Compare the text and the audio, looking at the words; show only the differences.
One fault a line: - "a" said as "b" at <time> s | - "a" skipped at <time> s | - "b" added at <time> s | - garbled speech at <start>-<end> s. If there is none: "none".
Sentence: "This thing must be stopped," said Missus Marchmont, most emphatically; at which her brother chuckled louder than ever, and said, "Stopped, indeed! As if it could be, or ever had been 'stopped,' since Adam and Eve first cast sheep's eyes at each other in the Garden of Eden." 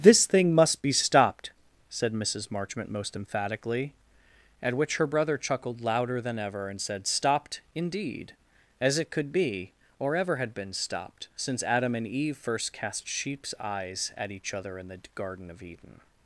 - "if" skipped at 9.0 s